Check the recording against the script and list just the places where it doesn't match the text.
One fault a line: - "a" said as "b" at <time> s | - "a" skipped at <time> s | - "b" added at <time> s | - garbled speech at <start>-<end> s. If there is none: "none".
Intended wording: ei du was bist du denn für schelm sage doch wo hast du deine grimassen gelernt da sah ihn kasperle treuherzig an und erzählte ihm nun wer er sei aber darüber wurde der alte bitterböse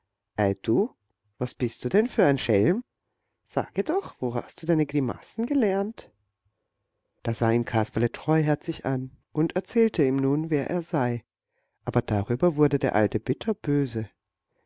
- "ein" added at 2.2 s